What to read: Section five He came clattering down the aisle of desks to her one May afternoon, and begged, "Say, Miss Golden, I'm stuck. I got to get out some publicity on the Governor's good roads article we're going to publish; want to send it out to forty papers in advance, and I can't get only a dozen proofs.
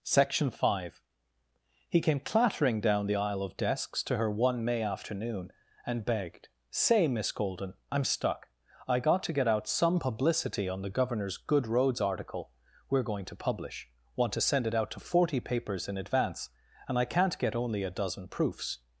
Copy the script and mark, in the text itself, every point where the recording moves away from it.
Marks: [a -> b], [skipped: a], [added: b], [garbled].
Section five He came clattering down the aisle of desks to her one May afternoon, and begged, "Say, Miss Golden, I'm stuck. I got to get out some publicity on the Governor's good roads article we're going to publish; want to send it out to forty papers in advance, and I can't get only a dozen proofs.